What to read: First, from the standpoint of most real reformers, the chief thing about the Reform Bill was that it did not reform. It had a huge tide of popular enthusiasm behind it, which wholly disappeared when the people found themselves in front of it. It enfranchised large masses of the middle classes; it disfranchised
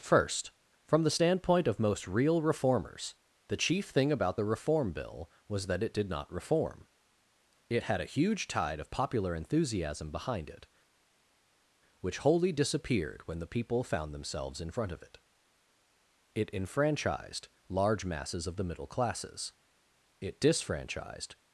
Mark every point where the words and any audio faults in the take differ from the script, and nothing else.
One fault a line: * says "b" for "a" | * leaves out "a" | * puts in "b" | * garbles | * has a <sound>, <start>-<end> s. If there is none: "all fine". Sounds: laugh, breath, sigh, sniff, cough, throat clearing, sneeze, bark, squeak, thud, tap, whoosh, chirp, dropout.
all fine